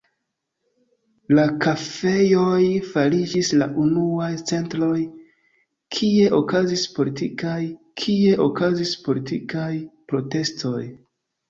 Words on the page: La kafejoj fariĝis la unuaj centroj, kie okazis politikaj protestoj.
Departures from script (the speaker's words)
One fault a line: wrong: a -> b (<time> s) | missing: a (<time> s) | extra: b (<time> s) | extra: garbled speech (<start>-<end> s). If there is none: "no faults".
extra: kie okazis politikaj (8.0 s)